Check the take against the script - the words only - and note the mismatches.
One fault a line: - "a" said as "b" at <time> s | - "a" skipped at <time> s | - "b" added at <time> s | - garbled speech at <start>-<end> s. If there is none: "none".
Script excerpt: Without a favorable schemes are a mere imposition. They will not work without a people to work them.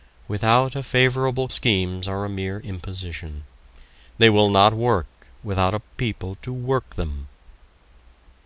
none